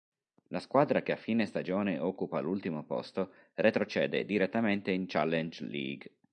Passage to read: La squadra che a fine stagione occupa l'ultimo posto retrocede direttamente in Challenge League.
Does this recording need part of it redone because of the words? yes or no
no